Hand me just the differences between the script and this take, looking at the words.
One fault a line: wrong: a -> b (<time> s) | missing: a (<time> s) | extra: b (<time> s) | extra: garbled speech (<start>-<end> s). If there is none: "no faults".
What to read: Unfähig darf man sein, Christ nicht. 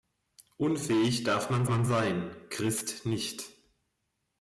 extra: man (1.7 s)